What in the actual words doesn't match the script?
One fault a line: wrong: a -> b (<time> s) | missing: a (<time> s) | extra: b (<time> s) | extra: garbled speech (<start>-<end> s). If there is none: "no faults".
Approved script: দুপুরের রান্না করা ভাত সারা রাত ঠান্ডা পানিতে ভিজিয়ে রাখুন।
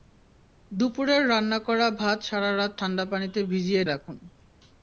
no faults